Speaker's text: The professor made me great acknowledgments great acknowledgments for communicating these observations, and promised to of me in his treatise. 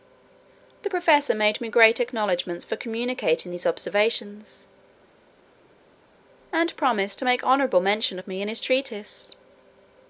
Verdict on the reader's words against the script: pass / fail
fail